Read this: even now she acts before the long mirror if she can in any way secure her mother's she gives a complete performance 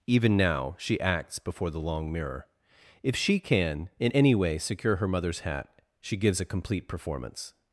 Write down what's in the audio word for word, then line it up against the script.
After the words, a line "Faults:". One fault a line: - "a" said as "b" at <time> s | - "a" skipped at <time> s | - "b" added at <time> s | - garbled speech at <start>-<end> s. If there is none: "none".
even now she acts before the long mirror if she can in any way secure her mother's hat she gives a complete performance
Faults:
- "hat" added at 5.4 s